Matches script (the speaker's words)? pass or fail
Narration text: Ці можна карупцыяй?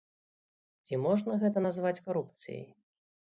fail